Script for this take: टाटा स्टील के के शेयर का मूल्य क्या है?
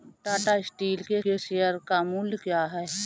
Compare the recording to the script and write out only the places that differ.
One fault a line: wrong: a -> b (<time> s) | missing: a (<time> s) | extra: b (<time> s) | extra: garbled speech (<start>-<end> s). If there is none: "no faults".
no faults